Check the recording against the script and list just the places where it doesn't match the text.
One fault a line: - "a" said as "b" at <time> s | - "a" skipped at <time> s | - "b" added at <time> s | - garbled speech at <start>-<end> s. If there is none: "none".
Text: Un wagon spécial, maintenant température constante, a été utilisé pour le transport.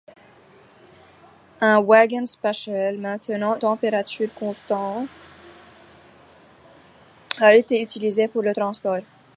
none